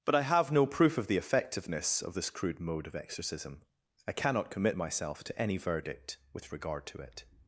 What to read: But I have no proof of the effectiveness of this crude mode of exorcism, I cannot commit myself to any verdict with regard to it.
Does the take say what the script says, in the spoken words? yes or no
yes